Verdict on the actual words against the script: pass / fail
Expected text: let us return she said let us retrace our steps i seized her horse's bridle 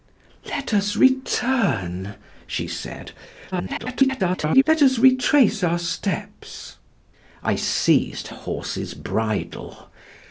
fail